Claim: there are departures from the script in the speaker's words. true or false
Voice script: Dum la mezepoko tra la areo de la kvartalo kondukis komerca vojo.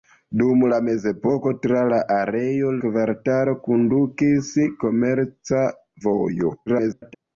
true